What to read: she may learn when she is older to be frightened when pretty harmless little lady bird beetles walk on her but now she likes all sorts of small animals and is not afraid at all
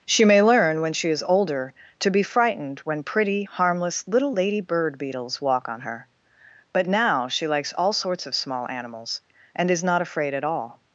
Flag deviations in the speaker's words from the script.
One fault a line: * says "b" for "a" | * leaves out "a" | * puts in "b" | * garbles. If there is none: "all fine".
all fine